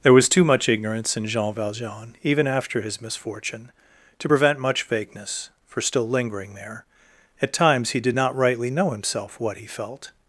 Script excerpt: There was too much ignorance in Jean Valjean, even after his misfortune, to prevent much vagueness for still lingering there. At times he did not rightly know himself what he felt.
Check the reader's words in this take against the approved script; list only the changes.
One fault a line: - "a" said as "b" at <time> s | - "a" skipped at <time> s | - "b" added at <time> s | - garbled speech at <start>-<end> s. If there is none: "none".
none